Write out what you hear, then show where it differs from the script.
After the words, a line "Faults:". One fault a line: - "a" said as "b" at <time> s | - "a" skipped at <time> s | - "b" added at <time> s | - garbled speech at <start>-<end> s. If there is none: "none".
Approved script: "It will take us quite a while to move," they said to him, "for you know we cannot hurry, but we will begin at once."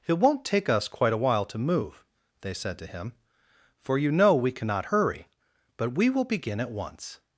"It won't take us quite a while to move," they said to him, "for you know we cannot hurry, but we will begin at once."
Faults:
- "will" said as "won't" at 0.2 s